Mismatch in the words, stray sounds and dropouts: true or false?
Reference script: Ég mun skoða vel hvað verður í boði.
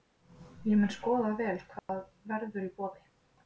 true